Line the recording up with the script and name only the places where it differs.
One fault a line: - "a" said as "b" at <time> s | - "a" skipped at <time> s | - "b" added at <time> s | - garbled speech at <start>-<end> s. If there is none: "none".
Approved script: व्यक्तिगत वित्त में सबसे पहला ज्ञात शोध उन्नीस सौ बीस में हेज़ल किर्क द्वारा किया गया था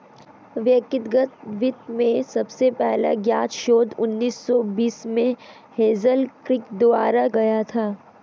- "किया" skipped at 7.3 s